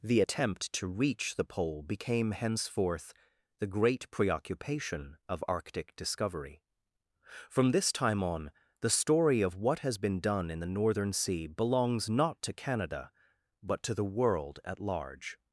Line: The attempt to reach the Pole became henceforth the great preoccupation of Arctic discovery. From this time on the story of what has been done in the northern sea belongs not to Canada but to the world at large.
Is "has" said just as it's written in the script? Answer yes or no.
yes